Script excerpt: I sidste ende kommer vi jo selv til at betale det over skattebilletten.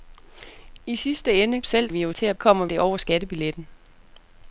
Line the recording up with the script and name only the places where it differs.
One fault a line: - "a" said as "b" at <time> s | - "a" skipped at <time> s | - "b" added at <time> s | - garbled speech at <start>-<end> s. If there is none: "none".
- "kommer" said as "selv" at 1.6 s
- "selv" skipped at 2.1 s
- "betale" said as "kommer" at 2.3 s